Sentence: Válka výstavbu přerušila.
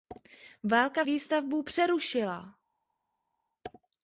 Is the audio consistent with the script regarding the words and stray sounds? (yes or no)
yes